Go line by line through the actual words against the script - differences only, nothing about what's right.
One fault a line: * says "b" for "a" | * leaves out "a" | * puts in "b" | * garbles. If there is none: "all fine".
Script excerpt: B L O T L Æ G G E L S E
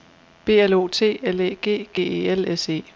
all fine